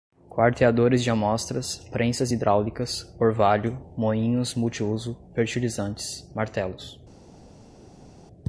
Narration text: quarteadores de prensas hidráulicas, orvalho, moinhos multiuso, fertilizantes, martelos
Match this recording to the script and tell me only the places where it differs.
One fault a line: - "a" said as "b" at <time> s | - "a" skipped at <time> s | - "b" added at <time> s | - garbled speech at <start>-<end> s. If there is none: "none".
- "amostras" added at 1.1 s